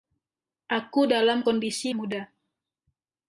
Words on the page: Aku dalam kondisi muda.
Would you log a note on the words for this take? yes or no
no